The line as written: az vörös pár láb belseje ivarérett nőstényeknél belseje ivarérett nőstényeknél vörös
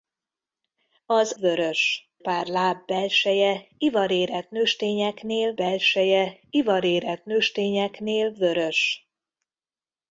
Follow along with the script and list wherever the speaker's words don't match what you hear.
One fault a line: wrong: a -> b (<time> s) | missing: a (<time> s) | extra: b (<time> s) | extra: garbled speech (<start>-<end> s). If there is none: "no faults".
no faults